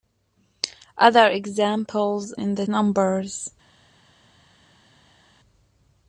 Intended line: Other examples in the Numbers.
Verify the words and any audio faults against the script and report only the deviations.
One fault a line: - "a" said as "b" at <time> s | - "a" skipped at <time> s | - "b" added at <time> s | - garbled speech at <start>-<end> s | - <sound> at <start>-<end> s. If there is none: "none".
none